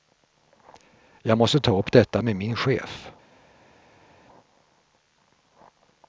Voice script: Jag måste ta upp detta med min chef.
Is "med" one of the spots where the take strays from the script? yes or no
no